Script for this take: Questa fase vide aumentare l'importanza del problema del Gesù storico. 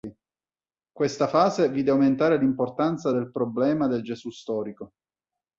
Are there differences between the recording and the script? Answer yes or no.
no